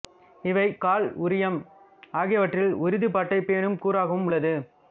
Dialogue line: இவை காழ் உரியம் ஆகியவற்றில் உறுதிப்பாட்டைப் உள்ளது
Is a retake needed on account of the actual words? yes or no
yes